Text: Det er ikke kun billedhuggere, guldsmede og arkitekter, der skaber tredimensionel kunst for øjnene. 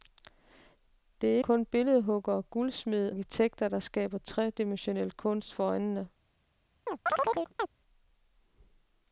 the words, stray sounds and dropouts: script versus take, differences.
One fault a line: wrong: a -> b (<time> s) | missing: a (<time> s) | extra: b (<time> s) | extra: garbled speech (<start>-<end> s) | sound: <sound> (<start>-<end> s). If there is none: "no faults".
missing: ikke (1.4 s)
missing: og (3.1 s)
sound: chirp (6.9-7.7 s)